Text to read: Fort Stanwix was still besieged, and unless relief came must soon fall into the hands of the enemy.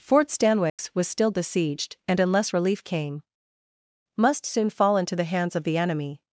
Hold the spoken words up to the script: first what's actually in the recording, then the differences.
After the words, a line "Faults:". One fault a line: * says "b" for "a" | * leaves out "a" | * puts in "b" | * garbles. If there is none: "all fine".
Fort Stanwix was still besieged, and unless relief came must soon fall into the hands of the enemy.
Faults:
all fine